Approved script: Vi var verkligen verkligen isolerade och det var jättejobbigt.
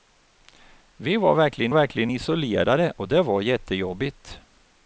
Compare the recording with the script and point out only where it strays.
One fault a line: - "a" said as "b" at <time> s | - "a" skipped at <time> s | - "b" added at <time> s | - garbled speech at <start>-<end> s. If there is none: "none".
none